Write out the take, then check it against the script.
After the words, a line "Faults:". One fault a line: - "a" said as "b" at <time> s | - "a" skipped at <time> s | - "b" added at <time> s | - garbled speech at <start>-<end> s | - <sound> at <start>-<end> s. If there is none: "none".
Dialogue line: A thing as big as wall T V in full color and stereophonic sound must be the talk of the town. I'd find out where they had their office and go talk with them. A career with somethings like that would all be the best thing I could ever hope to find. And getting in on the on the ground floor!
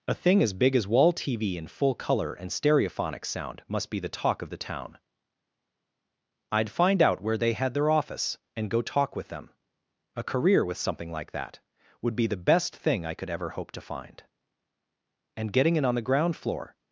A thing as big as wall T V in full color and stereophonic sound must be the talk of the town. I'd find out where they had their office and go talk with them. A career with something like that would be the best thing I could ever hope to find. And getting in on the ground floor!
Faults:
- "somethings" said as "something" at 10.8 s
- "all" skipped at 12.1 s
- "on the" skipped at 16.1 s